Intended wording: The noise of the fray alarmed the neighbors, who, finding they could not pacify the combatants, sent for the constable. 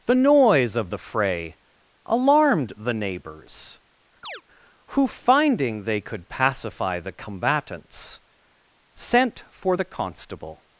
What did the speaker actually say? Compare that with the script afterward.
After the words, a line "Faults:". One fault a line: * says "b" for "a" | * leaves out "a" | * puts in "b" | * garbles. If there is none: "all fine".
The noise of the fray alarmed the neighbors, who, finding they could pacify the combatants, sent for the constable.
Faults:
* leaves out "not"